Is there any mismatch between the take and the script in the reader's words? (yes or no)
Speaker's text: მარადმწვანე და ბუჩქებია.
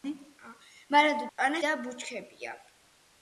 no